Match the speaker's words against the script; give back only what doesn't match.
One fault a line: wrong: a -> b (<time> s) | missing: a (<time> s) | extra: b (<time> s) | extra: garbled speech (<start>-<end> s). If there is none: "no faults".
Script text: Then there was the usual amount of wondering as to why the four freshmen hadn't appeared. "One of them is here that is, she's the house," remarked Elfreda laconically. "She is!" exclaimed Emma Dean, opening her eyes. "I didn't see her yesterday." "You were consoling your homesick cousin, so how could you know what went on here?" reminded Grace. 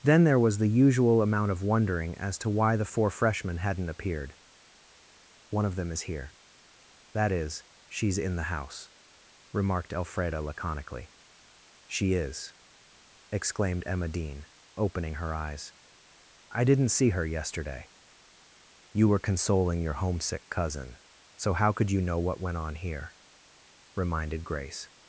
extra: in (8.2 s)